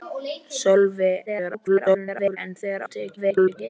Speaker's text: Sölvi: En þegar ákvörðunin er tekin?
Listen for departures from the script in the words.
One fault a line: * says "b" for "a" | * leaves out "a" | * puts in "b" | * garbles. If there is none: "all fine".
* garbles
* leaves out "ákvörðunin"
* garbles